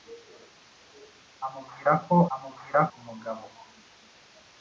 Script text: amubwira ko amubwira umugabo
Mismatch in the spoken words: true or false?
false